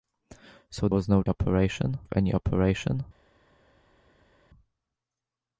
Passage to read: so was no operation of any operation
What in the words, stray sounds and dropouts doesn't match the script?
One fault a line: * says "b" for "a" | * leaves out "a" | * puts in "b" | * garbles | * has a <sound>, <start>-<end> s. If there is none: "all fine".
all fine